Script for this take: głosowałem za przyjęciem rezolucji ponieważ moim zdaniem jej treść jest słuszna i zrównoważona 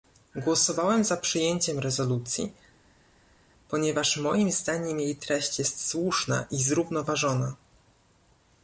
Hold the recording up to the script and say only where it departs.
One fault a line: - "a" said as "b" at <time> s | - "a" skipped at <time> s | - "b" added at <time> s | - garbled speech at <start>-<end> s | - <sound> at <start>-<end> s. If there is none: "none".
none